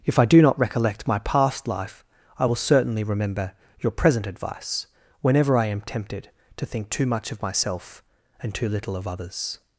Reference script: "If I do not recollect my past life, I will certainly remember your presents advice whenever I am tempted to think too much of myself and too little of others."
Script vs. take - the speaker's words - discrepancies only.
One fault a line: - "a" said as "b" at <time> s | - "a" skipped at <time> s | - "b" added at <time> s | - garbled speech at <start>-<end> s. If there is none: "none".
- "presents" said as "present" at 3.9 s